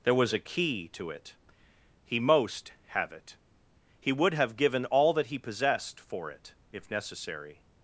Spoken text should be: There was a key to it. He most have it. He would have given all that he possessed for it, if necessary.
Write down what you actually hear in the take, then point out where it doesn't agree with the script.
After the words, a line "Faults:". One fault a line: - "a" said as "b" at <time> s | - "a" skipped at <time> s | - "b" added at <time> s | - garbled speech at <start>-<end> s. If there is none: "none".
There was a key to it. He most have it. He would have given all that he possessed for it, if necessary.
Faults:
none